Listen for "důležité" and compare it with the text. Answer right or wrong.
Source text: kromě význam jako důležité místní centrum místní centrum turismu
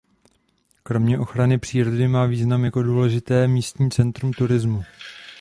right